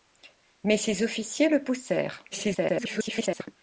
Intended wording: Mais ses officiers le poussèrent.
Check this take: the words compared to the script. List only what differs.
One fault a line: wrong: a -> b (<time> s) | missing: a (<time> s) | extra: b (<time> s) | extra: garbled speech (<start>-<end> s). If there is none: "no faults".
extra: garbled speech (2.3-3.5 s)